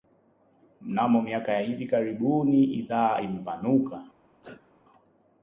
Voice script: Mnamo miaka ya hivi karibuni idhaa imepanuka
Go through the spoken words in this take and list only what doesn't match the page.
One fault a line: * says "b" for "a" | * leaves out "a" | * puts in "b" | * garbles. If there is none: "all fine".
all fine